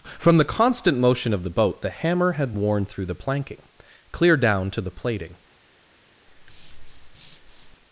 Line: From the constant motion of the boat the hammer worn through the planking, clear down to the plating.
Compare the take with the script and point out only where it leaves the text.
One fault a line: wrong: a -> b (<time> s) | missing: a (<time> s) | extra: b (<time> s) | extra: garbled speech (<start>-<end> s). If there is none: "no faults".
extra: had (2.3 s)